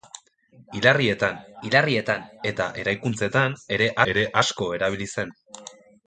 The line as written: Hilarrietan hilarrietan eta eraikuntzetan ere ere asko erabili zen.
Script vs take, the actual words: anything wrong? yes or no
no